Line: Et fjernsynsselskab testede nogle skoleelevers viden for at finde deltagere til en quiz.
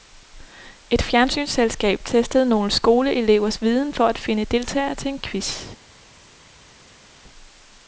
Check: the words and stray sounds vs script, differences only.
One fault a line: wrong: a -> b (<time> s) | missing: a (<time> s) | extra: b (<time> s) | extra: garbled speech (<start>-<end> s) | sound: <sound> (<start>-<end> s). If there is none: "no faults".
no faults